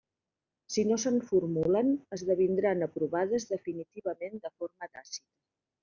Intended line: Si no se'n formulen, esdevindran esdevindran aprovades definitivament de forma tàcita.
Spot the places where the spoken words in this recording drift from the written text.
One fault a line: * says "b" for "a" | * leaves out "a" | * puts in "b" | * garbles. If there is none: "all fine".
* leaves out "esdevindran"